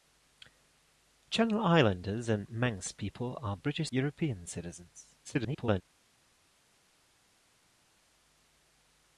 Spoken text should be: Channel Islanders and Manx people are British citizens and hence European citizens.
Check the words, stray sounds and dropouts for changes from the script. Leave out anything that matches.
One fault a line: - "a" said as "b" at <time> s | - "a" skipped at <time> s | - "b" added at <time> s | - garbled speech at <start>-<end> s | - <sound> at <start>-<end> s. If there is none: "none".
- "citizens and hence" skipped at 3.9 s
- garbled speech at 5.2-5.8 s